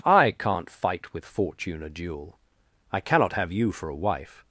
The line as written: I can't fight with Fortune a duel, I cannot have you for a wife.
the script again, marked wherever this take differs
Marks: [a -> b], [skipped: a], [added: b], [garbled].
I can't fight with Fortune a duel, I cannot have you for a wife.